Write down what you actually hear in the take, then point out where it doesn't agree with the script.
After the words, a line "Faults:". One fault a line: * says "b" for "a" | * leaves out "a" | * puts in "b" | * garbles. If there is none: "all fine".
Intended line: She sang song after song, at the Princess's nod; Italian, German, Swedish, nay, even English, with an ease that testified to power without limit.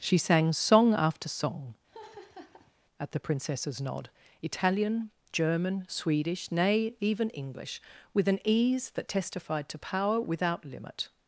She sang song after song, at the Princess's nod; Italian, German, Swedish, nay, even English, with an ease that testified to power without limit.
Faults:
all fine